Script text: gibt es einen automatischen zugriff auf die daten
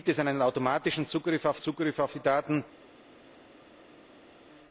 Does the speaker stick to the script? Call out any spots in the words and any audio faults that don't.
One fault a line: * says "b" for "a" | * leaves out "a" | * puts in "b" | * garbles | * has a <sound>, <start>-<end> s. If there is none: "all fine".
* puts in "zugriff auf"